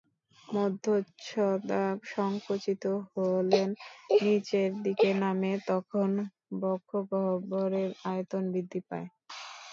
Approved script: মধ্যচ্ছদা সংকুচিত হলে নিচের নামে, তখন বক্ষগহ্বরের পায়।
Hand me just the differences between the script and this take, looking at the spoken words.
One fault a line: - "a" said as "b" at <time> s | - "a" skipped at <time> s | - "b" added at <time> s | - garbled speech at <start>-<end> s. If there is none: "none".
- "দিকে" added at 4.8 s
- "আয়তন বৃদ্ধি" added at 8.1 s